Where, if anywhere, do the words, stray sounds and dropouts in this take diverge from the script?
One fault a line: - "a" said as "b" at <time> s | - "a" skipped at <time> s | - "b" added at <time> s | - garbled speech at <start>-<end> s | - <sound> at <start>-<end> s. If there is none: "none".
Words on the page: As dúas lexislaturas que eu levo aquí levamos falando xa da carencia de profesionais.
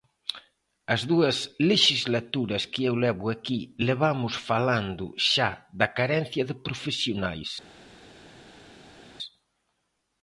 none